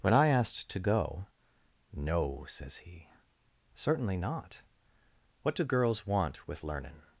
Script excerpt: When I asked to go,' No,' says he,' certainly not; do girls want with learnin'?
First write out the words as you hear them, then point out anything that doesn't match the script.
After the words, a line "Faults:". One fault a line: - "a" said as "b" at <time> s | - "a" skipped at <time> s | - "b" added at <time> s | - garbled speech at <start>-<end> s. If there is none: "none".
When I asked to go,' No,' says he,' certainly not; what do girls want with learnin'?
Faults:
- "what" added at 5.4 s